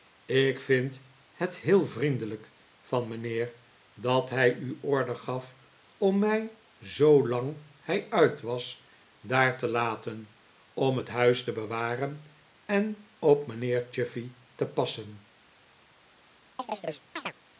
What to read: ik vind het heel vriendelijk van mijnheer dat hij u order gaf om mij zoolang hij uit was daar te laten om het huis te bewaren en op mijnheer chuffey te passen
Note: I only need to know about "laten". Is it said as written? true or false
true